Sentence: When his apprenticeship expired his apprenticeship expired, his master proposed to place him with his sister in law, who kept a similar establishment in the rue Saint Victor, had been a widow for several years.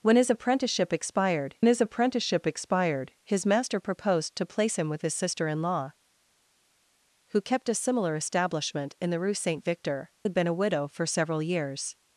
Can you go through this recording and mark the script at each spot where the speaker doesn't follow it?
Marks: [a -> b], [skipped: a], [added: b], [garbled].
When his apprenticeship expired his apprenticeship expired, his master proposed to place him with his sister in law, who kept a similar establishment in the rue Saint Victor, had been a widow for several years.